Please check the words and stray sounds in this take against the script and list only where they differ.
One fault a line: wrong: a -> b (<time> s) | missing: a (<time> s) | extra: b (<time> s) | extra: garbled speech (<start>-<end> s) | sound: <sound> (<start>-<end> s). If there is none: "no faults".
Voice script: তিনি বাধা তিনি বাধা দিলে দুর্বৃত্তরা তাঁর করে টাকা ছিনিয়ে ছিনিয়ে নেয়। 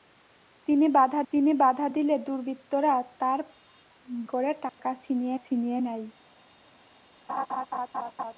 sound: dropout (4.7-4.8 s)
sound: laugh (7.3-8.3 s)